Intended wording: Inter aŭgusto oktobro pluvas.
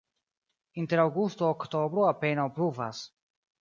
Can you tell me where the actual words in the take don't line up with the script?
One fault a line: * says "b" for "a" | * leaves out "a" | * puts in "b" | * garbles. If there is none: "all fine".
* puts in "apenaŭ"